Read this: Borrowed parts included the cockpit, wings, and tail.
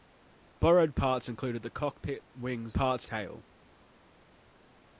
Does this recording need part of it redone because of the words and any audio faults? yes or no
yes